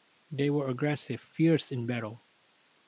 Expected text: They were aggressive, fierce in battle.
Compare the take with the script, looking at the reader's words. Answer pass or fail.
pass